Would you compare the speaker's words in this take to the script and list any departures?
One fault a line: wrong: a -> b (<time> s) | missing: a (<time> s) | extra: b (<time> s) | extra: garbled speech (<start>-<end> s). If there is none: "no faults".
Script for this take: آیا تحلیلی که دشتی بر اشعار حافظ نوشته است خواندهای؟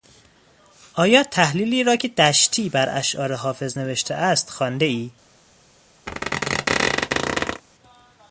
extra: را (1.8 s)